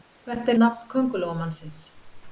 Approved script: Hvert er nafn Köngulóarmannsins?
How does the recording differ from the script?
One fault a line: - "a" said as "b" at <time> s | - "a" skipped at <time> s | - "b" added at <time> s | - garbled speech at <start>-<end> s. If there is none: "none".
none